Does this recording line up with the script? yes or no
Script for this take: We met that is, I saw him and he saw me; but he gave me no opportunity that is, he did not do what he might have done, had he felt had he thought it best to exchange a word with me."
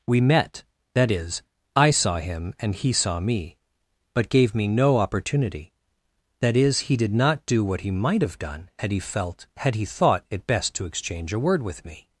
no